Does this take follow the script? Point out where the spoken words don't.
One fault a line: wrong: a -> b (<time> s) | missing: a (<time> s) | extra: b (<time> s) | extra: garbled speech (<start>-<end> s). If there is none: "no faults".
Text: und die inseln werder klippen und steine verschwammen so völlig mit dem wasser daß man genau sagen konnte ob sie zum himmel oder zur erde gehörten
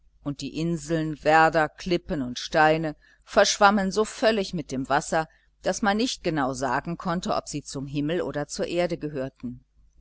extra: nicht (6.0 s)